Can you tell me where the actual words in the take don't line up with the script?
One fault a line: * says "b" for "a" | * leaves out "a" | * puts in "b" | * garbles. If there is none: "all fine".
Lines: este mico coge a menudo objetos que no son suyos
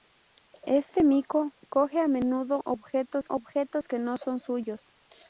* puts in "objetos"